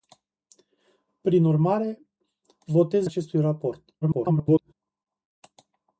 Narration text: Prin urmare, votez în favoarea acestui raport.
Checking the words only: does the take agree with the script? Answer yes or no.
no